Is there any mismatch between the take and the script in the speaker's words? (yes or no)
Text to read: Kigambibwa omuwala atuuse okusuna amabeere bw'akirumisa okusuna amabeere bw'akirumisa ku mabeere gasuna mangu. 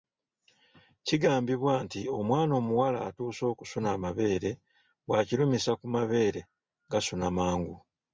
yes